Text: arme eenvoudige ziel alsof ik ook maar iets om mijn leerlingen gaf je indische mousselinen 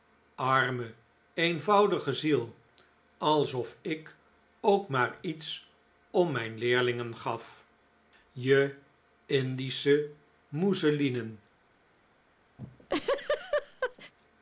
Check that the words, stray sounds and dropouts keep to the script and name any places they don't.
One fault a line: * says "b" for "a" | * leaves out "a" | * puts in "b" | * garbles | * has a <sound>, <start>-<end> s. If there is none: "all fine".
* has a laugh, 12.6-14.1 s